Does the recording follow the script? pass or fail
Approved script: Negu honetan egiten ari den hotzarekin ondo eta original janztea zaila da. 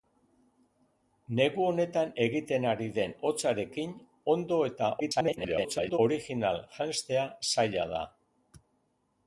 fail